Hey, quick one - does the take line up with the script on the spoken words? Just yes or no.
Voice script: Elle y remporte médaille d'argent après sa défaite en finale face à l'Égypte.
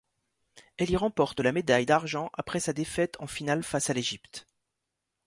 no